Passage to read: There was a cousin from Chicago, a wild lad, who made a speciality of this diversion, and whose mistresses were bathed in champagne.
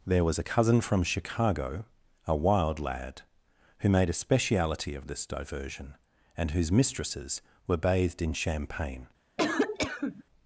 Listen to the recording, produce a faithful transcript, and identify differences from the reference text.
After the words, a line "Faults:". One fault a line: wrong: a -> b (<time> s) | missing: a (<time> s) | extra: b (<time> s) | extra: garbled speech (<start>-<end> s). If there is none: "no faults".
There was a cousin from Chicago, a wild lad, who made a speciality of this diversion, and whose mistresses were bathed in champagne.
Faults:
no faults